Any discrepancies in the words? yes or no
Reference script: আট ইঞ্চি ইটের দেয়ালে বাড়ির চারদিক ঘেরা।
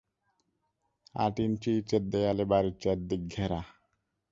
no